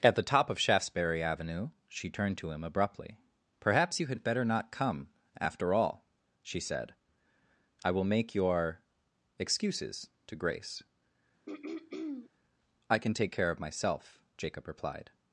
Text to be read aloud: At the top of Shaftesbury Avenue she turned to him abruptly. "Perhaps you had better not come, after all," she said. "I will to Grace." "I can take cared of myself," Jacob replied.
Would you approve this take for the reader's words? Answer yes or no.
no